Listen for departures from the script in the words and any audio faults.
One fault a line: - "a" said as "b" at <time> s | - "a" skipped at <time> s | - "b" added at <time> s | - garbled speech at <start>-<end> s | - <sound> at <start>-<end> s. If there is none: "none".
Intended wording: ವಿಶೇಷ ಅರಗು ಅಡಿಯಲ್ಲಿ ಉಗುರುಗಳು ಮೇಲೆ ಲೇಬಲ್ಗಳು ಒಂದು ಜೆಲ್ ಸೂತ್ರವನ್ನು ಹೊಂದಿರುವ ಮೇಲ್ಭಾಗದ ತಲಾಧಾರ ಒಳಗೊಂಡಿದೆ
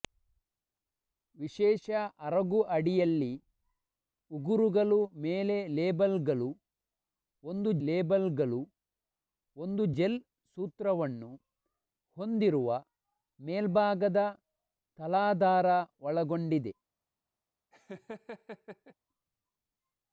- "ಲೇಬಲ್ಗಳು ಒಂದು" added at 7.9 s
- laugh at 17.7-18.9 s